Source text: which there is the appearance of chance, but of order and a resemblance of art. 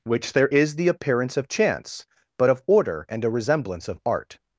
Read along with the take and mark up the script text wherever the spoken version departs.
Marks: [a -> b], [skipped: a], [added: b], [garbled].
which there is the appearance of chance, but of order and a resemblance of art.